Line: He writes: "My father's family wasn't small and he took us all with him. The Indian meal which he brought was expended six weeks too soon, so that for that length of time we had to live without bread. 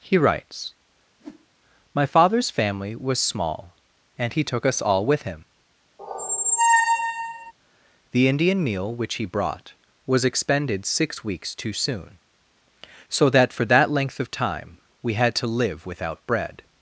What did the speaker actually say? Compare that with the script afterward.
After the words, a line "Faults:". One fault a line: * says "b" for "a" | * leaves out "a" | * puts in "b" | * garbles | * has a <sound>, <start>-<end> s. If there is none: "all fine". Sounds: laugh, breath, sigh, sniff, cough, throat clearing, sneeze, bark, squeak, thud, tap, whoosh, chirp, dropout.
He writes: "My father's family was small and he took us all with him. The Indian meal which he brought was expended six weeks too soon, so that for that length of time we had to live without bread.
Faults:
* has a whoosh, 1.1-1.5 s
* says "was" for "wasn't"
* has a squeak, 6.0-7.5 s